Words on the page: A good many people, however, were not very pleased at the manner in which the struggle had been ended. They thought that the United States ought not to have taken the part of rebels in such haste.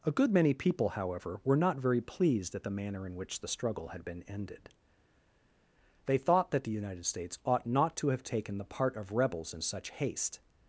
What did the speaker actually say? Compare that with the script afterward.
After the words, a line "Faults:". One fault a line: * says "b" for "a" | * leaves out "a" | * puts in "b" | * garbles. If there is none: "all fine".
A good many people, however, were not very pleased at the manner in which the struggle had been ended. They thought that the United States ought not to have taken the part of rebels in such haste.
Faults:
all fine